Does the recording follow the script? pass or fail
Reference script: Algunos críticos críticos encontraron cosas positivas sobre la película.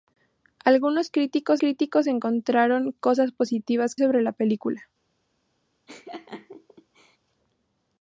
pass